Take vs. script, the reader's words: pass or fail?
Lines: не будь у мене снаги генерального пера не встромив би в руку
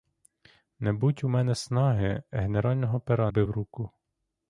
fail